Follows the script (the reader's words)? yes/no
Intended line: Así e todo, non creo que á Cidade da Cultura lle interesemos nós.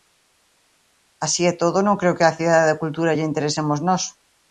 yes